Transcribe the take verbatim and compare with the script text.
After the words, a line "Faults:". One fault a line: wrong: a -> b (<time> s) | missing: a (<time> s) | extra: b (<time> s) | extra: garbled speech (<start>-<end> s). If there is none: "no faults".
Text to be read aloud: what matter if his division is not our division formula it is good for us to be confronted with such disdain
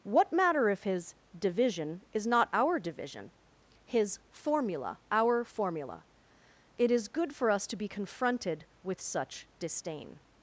what matter if his division is not our division his formula our formula it is good for us to be confronted with such disdain
Faults:
extra: his formula our (3.9 s)